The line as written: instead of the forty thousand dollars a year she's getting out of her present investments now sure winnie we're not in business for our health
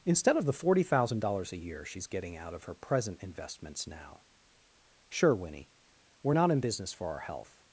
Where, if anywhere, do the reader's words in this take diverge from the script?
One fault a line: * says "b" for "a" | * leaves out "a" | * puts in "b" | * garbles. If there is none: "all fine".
all fine